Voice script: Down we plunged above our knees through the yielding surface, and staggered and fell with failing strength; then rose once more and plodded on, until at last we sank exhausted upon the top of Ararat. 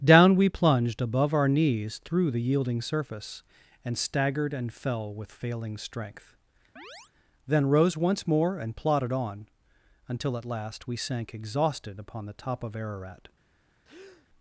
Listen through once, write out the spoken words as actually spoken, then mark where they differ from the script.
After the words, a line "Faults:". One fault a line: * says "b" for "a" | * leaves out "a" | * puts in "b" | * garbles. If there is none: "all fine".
Down we plunged above our knees through the yielding surface, and staggered and fell with failing strength; then rose once more and plodded on, until at last we sank exhausted upon the top of Ararat.
Faults:
all fine